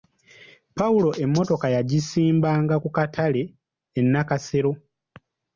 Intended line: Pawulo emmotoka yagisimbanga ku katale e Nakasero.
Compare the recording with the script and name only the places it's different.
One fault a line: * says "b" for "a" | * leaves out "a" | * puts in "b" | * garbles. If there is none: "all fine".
all fine